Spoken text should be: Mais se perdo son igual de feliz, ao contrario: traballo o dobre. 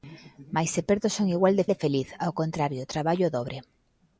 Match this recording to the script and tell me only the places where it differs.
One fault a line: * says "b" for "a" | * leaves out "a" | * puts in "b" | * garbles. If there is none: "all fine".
* puts in "de"